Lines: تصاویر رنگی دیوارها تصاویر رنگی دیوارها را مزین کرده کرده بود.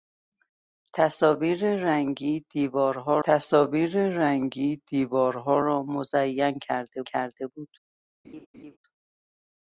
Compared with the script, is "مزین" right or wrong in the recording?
right